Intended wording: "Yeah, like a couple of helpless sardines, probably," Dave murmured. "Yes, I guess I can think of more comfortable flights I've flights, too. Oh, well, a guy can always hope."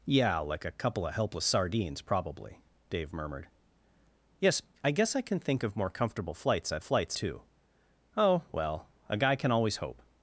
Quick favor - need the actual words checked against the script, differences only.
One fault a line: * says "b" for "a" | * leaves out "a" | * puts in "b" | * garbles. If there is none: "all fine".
all fine